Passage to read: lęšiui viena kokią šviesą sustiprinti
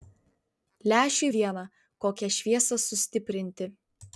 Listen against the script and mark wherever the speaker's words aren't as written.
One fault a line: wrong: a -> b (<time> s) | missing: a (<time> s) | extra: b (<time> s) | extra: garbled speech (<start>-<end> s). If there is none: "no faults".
no faults